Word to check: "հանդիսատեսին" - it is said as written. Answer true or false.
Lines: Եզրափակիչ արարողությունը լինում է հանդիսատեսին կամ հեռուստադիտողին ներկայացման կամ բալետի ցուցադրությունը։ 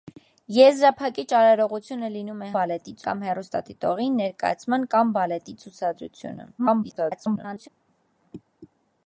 false